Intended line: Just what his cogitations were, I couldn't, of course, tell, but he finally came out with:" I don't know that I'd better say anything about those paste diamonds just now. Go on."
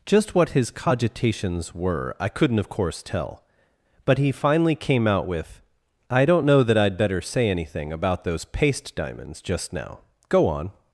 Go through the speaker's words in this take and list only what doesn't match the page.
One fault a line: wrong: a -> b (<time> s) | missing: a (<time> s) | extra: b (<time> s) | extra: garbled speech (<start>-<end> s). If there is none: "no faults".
no faults